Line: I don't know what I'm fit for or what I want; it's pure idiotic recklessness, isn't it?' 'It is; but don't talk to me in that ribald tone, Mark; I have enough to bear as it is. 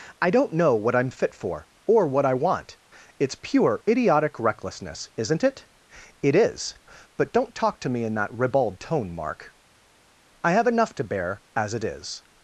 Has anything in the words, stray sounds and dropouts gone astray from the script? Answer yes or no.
no